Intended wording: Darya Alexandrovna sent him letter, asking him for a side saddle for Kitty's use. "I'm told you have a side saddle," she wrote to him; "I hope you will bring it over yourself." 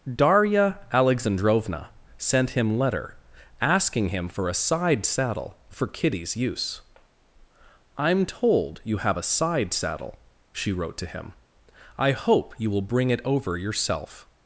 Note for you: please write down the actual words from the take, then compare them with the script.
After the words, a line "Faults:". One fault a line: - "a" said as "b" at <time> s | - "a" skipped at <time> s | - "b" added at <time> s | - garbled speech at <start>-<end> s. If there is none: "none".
Darya Alexandrovna sent him letter, asking him for a side saddle for Kitty's use. "I'm told you have a side saddle," she wrote to him; "I hope you will bring it over yourself."
Faults:
none